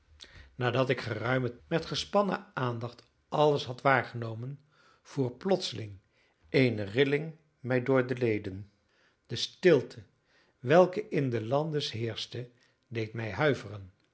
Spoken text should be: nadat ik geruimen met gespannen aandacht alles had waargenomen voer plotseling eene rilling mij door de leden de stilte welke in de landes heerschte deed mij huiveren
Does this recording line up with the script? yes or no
yes